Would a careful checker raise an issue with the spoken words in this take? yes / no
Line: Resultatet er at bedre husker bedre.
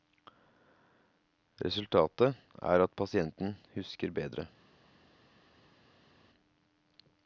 yes